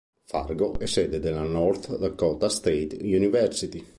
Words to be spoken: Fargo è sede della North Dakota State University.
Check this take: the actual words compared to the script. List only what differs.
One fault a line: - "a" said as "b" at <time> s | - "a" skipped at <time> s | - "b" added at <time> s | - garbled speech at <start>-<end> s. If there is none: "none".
none